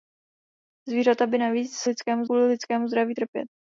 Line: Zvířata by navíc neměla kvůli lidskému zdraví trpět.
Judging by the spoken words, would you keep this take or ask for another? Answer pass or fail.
fail